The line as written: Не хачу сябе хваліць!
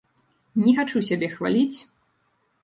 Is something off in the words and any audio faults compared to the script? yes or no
no